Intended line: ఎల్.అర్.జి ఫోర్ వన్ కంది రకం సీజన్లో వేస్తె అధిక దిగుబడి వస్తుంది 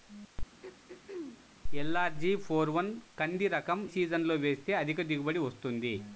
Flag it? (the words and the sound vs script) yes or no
yes